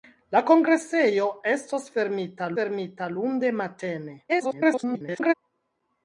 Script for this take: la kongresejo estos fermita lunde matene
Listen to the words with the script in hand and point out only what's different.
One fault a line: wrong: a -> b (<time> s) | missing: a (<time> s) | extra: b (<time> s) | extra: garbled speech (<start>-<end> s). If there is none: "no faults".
extra: fermita (2.6 s)
extra: garbled speech (4.3-5.3 s)